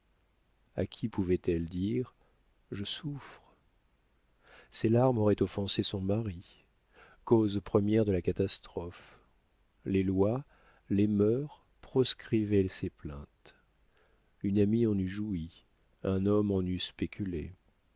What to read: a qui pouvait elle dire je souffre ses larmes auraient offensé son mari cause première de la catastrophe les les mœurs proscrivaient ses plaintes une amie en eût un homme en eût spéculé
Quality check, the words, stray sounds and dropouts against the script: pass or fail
fail